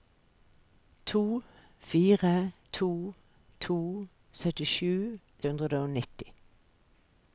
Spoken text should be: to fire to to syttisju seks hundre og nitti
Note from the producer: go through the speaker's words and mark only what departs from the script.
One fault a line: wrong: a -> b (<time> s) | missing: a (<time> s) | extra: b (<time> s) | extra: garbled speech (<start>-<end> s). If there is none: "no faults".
missing: seks (5.2 s)